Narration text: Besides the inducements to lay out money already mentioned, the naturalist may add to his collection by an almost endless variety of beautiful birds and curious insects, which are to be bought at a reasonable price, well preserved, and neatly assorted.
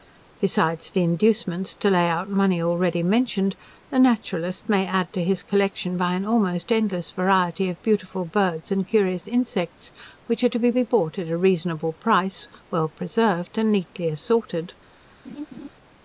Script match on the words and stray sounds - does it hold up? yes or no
no